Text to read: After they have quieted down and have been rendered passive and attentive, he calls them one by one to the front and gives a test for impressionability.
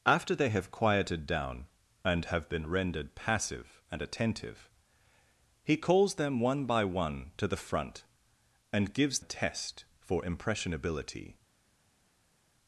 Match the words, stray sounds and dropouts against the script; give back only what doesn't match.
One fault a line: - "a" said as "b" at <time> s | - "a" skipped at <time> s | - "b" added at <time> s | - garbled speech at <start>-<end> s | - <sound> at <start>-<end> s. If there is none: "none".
none